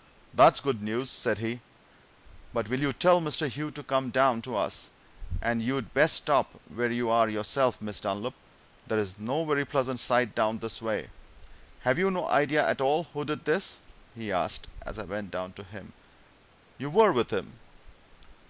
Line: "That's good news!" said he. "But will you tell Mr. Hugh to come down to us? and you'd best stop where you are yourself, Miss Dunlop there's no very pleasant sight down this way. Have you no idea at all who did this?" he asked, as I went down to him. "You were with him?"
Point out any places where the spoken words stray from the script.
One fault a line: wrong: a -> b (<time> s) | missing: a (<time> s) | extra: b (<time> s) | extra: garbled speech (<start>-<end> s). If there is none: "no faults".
no faults